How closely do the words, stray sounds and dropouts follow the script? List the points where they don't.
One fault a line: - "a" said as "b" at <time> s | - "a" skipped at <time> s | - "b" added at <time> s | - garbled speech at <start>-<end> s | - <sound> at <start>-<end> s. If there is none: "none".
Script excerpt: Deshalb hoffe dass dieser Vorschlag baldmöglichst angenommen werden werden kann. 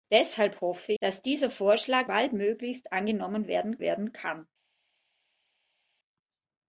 none